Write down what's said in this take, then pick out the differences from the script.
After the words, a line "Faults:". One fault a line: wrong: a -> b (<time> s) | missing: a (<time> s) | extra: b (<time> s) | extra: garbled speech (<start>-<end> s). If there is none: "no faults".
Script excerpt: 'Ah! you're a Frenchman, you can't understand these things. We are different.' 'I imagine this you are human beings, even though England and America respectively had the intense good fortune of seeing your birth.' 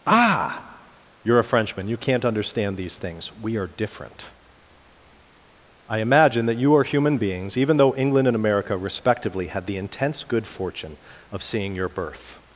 'Ah! you're a Frenchman, you can't understand these things. We are different.' 'I imagine that you are human beings, even though England and America respectively had the intense good fortune of seeing your birth.'
Faults:
wrong: this -> that (6.5 s)